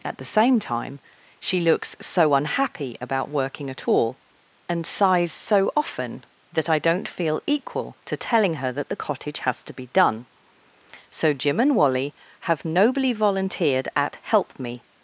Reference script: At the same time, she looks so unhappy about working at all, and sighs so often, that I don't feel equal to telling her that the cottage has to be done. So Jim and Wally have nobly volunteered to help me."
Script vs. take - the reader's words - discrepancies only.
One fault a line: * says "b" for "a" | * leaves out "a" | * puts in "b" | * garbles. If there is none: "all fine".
* says "at" for "to"